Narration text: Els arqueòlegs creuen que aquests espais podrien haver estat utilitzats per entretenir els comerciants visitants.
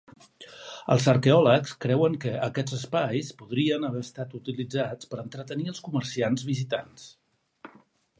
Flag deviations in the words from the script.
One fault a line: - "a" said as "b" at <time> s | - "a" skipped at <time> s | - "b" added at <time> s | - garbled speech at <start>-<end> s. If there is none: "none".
none